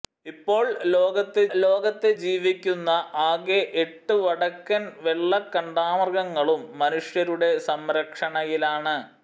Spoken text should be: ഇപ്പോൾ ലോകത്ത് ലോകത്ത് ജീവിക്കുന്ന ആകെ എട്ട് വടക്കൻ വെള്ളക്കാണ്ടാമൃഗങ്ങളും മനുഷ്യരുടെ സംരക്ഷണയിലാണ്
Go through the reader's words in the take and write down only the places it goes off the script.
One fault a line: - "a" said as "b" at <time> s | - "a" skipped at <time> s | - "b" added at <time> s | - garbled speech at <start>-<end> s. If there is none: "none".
none